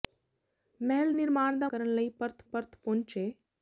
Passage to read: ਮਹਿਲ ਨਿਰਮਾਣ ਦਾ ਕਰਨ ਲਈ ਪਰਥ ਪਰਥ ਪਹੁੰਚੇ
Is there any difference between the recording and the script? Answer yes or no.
no